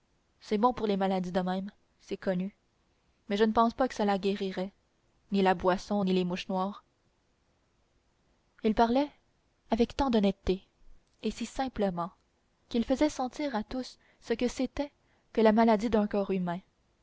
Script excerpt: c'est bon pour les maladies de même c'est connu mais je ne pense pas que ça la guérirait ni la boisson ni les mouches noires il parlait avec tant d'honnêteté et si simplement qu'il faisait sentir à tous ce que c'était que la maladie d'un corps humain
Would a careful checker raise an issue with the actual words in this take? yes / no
no